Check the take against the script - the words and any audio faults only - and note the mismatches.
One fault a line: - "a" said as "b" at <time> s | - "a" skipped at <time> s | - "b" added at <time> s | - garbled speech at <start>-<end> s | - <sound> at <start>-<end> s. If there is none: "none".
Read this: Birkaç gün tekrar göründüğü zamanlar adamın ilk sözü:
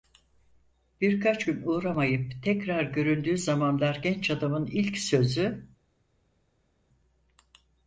- "uğramayıp" added at 1.6 s
- "genç" added at 4.0 s